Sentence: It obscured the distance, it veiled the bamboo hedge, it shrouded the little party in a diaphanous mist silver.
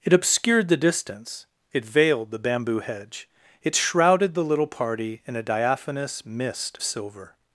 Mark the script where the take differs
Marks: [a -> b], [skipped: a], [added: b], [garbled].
It obscured the distance, it veiled the bamboo hedge, it shrouded the little party in a diaphanous mist silver.